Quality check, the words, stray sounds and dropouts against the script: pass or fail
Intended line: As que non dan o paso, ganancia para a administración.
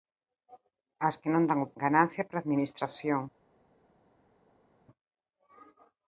fail